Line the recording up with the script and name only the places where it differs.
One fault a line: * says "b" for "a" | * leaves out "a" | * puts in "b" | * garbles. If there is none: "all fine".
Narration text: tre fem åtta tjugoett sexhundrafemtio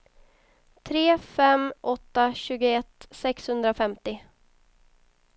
all fine